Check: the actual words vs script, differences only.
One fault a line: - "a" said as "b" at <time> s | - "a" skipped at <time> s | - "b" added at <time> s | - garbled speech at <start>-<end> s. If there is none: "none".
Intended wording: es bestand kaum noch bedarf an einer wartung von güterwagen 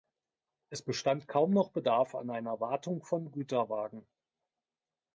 none